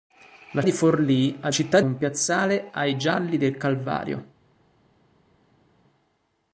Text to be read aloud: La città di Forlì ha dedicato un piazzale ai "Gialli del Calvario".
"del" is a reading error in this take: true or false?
false